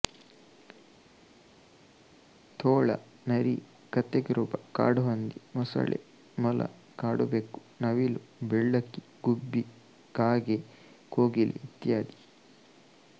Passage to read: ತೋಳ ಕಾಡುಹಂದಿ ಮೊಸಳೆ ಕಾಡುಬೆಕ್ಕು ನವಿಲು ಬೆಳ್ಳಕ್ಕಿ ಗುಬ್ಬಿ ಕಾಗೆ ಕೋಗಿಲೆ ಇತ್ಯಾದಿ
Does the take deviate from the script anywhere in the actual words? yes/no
yes